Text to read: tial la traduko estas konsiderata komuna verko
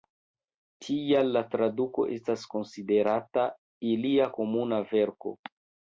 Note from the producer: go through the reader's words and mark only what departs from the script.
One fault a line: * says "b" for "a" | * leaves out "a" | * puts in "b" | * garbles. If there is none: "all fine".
* puts in "ilia"